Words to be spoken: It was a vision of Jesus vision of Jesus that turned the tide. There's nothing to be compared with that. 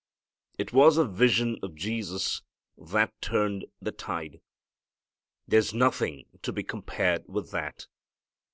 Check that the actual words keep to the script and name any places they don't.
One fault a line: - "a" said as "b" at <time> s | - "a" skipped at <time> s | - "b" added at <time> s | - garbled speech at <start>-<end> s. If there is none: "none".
- "vision of Jesus" skipped at 2.4 s